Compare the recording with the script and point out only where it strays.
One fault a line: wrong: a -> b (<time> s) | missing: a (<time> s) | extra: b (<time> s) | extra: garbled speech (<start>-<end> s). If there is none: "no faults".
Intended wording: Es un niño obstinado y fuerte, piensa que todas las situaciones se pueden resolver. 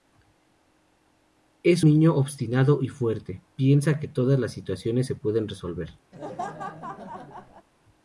missing: un (1.9 s)